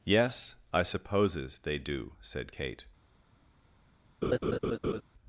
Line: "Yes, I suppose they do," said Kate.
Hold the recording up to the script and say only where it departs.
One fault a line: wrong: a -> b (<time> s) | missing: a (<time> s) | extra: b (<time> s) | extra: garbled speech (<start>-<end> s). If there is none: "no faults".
wrong: suppose -> supposes (0.8 s)